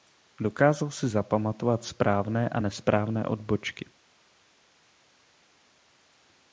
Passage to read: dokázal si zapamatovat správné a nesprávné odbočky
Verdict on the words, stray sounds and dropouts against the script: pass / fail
pass